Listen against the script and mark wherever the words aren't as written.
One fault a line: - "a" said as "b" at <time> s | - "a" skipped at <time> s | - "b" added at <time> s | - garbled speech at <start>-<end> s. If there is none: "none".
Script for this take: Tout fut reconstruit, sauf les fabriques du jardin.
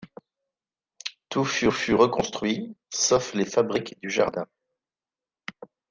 - "fut" added at 1.7 s